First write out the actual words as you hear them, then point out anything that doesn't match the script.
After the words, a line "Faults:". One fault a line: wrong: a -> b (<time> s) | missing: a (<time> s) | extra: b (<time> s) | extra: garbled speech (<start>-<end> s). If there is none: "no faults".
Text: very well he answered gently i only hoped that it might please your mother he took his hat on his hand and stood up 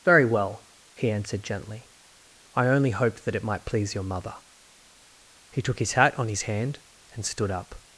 very well he answered gently i only hoped that it might please your mother he took his hat on his hand and stood up
Faults:
no faults